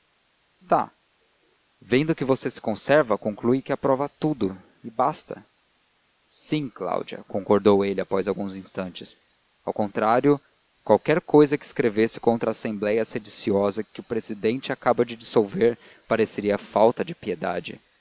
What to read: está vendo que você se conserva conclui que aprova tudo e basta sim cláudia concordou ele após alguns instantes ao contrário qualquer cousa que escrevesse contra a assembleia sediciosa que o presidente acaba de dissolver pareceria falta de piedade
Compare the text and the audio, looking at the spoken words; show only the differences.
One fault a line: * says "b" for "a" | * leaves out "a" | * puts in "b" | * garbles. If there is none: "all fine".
all fine